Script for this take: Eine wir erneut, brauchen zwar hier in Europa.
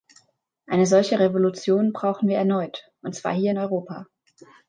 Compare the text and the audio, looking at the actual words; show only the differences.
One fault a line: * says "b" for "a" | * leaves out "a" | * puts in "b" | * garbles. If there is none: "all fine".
* puts in "solche Revolution brauchen"
* says "und" for "brauchen"